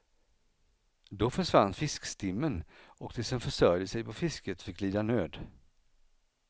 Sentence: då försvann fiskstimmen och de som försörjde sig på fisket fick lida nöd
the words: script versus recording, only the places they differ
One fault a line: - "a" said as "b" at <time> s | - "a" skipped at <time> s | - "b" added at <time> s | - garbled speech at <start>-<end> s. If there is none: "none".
none